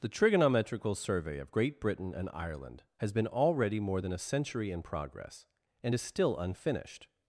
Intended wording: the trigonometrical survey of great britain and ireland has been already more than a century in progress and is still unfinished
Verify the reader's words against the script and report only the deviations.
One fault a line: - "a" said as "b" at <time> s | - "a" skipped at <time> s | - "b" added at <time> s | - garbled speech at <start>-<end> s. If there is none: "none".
none